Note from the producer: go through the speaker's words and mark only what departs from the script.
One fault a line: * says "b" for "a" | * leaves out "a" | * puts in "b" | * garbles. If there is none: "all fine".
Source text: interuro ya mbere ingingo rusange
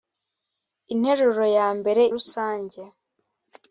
* leaves out "ingingo"